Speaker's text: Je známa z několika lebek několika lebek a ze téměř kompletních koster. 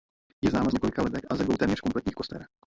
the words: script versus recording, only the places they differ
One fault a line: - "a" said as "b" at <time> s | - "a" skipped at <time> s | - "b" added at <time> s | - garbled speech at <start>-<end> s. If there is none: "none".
- "několika lebek" skipped at 1.2 s
- "dvou" added at 1.4 s